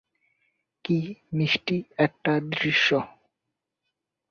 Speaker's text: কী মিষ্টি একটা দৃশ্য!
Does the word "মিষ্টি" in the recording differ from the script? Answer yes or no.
no